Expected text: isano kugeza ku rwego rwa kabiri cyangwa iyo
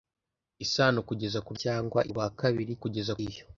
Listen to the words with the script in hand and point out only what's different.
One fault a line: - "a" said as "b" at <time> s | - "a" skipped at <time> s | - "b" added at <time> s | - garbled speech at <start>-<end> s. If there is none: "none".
- "rwego" said as "cyangwa" at 1.6 s
- "cyangwa" said as "kugeza" at 2.8 s